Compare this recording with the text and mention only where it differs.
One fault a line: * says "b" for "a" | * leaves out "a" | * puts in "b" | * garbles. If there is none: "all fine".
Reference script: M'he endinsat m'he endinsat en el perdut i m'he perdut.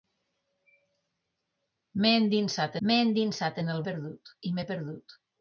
all fine